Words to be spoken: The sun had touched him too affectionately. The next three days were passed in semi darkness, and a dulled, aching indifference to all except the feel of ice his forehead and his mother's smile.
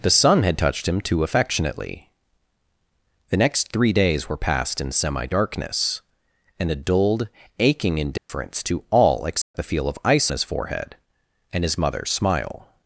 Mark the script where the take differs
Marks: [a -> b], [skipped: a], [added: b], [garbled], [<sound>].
The sun had touched him too affectionately. The next three days were passed in semi darkness, and a dulled, aching indifference [dropout] to all except [dropout] the feel of ice his forehead and his mother's smile.